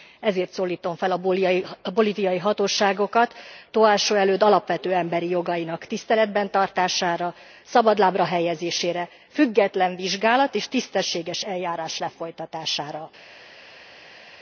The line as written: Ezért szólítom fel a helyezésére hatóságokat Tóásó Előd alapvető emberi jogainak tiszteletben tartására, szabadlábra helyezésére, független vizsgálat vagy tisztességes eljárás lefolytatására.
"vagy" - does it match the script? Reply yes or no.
no